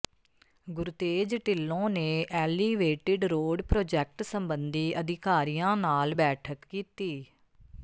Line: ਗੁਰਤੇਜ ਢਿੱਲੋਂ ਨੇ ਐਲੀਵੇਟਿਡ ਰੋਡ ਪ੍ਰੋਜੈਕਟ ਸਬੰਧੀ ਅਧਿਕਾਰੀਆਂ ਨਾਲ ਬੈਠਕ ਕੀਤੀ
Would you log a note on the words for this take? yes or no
no